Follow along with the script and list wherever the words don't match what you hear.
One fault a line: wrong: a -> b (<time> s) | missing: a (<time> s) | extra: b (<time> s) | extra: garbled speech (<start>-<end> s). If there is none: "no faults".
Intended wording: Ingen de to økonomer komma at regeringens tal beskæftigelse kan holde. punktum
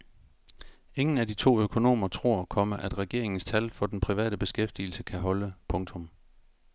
extra: af (1.2 s)
extra: tror (2.1 s)
extra: for den private (3.7 s)